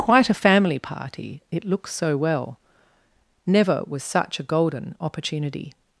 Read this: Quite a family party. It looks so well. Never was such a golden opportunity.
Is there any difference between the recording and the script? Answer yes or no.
no